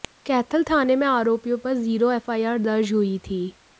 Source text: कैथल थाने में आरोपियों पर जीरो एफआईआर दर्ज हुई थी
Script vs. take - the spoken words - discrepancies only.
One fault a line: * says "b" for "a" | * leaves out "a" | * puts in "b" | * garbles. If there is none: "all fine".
all fine